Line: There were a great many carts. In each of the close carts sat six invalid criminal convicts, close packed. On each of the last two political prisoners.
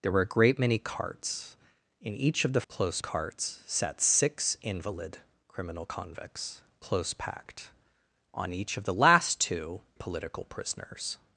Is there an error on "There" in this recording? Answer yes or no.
no